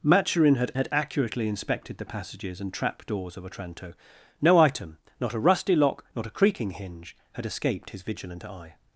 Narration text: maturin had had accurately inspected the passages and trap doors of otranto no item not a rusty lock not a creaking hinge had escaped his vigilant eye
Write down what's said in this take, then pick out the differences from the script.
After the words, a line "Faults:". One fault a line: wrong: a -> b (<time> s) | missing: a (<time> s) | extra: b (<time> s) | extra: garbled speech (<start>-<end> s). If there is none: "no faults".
maturin had had accurately inspected the passages and trap doors of otranto no item not a rusty lock not a creaking hinge had escaped his vigilant eye
Faults:
no faults